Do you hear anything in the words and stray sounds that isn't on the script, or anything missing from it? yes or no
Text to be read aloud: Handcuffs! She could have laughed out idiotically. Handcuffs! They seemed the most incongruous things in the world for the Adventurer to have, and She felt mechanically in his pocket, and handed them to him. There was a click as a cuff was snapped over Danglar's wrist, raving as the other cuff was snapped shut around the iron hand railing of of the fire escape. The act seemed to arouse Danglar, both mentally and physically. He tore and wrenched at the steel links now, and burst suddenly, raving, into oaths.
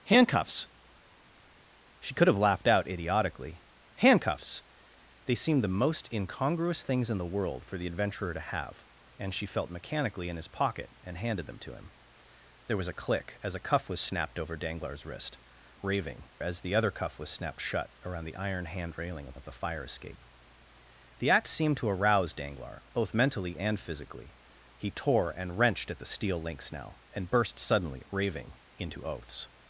no